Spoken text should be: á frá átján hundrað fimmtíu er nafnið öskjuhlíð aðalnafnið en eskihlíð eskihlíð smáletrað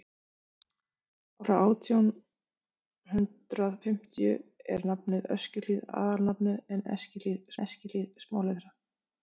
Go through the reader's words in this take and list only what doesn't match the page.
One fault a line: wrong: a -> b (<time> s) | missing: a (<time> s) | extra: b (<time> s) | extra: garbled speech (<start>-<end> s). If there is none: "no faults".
no faults